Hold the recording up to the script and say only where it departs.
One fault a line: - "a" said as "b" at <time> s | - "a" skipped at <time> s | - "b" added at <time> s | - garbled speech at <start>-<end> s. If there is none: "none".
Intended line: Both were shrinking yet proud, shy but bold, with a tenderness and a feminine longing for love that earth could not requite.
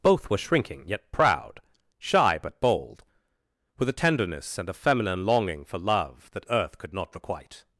none